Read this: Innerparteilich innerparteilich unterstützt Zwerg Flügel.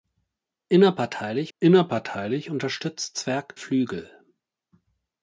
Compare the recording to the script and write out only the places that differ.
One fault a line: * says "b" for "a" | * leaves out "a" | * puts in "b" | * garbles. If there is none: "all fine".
all fine